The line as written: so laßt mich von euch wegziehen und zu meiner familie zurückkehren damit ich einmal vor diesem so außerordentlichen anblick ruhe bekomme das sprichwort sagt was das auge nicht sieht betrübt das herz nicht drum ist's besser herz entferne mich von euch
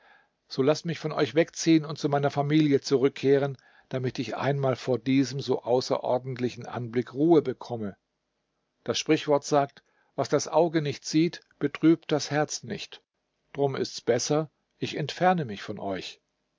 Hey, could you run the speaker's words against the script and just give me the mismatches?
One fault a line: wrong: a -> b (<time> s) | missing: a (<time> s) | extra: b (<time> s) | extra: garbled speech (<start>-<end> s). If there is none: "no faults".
wrong: herz -> ich (14.8 s)